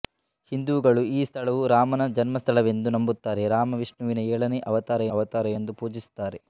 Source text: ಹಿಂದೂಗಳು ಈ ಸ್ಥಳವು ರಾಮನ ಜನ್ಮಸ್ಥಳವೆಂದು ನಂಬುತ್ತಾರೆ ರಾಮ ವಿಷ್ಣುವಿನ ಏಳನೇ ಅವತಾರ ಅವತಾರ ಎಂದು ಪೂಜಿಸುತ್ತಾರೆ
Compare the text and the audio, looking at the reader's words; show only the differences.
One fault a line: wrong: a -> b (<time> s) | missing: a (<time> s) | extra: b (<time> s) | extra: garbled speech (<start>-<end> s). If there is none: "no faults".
no faults